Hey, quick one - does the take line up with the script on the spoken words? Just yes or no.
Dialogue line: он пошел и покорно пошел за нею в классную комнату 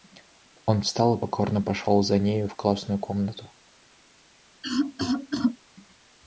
no